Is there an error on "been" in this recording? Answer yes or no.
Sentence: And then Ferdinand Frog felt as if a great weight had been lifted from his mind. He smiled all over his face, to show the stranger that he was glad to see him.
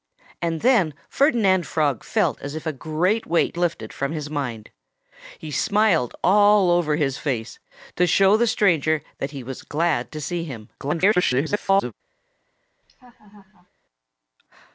yes